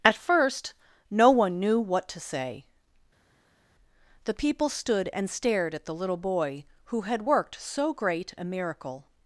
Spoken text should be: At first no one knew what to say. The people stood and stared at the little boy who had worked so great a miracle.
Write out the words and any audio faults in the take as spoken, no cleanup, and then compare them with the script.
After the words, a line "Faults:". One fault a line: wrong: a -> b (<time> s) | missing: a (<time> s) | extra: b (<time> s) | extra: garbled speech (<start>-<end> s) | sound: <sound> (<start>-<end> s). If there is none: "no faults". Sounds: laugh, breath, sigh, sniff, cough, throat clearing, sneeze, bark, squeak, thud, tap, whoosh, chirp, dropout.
At first no one knew what to say. The people stood and stared at the little boy who had worked so great a miracle.
Faults:
no faults